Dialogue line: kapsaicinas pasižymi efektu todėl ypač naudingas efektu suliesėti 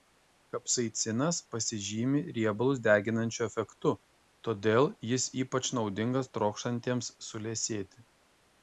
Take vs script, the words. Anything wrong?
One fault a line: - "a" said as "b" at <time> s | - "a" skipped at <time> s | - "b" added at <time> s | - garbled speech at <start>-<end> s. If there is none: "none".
- "riebalus deginančiu" added at 2.4 s
- "jis" added at 5.2 s
- "efektu" said as "trokštantiems" at 6.4 s